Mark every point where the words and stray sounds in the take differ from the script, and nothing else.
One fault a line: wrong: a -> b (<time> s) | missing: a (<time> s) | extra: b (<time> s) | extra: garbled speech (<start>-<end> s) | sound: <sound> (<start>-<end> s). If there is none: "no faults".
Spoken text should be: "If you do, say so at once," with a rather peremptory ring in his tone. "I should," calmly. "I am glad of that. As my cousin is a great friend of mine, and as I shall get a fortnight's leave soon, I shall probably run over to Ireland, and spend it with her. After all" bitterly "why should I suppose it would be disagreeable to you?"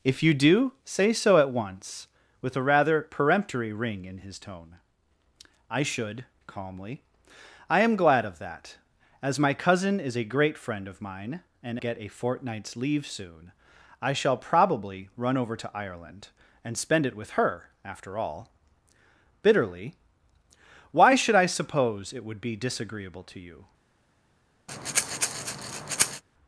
missing: as I shall (11.8 s)
sound: breath (24.7-26.2 s)